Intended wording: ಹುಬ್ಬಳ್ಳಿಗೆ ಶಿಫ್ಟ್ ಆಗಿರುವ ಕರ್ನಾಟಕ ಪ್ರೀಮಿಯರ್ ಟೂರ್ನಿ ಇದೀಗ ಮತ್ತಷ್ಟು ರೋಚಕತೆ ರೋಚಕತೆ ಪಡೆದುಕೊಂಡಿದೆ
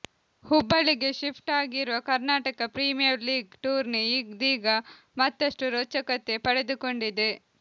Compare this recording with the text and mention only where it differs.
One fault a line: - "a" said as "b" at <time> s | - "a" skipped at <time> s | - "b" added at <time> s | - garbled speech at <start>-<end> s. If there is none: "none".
- "ಲೀಗ್" added at 3.3 s
- "ರೋಚಕತೆ" skipped at 6.4 s